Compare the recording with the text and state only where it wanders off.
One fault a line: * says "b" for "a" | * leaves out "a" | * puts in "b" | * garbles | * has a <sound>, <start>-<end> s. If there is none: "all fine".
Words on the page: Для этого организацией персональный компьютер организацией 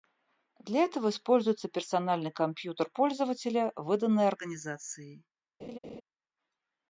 * says "используется" for "организацией"
* puts in "пользователя выданный"
* has a laugh, 5.6-6.0 s